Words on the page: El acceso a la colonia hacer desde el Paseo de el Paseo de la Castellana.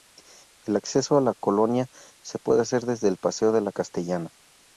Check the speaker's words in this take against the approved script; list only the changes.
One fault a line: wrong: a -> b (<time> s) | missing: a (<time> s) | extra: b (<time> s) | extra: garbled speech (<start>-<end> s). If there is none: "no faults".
extra: se puede (2.2 s)
missing: el Paseo de (3.6 s)